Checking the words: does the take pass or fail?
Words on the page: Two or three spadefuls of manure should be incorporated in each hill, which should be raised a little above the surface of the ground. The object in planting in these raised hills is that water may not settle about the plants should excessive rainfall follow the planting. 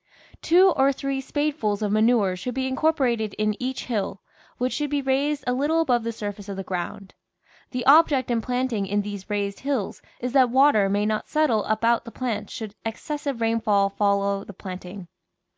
pass